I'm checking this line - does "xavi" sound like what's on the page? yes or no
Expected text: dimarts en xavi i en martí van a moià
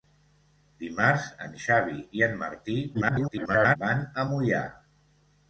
yes